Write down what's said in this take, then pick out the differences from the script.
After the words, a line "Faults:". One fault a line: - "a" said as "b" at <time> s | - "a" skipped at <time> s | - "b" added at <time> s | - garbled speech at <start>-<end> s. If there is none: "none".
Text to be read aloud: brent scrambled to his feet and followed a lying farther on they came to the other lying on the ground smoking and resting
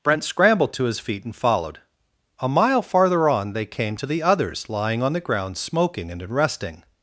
brent scrambled to his feet and followed a mile farther on they came to the others lying on the ground smoking and resting
Faults:
- "lying" said as "mile" at 2.5 s
- "other" said as "others" at 4.2 s